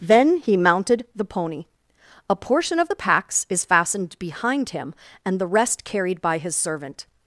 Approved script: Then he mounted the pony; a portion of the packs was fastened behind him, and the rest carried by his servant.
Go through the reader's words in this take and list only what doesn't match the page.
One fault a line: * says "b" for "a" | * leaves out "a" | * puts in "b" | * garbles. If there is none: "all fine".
* says "is" for "was"